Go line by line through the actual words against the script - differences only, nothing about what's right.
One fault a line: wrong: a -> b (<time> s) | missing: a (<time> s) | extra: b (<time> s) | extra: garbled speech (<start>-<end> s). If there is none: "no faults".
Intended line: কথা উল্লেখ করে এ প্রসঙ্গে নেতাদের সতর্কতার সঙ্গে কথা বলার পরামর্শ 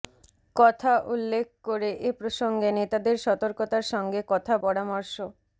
missing: বলার (4.5 s)